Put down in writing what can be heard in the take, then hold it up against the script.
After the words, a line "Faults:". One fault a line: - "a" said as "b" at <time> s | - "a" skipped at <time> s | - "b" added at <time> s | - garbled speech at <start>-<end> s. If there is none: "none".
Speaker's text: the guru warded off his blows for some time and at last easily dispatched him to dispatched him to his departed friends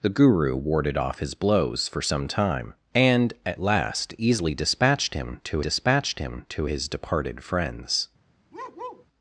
the guru warded off his blows for some time and at last easily dispatched him to dispatched him to his departed friends
Faults:
none